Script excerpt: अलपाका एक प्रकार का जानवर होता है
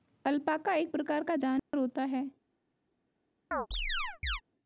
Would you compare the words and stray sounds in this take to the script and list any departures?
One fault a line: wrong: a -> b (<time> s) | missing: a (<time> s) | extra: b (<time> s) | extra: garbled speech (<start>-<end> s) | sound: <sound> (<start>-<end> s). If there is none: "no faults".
sound: dropout (1.6-1.7 s)
sound: chirp (3.5-4.4 s)